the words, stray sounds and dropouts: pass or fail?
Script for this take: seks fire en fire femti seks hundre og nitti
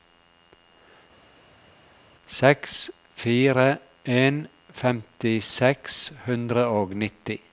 fail